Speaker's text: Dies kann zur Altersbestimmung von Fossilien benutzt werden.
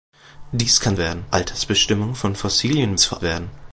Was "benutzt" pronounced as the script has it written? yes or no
no